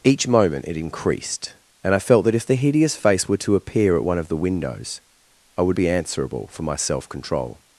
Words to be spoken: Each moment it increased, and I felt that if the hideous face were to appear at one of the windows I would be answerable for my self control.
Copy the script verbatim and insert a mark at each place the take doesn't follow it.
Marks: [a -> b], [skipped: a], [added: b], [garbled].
Each moment it increased, and I felt that if the hideous face were to appear at one of the windows I would be answerable for my self control.